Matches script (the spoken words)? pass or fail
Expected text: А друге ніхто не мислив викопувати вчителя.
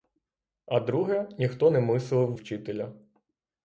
fail